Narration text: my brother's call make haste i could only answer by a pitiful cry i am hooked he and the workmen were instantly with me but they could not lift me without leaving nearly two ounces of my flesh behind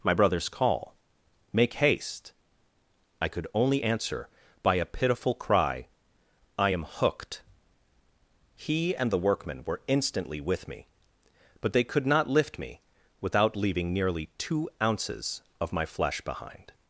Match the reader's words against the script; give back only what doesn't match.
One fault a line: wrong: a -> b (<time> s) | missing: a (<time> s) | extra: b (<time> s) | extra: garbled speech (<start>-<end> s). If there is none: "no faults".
no faults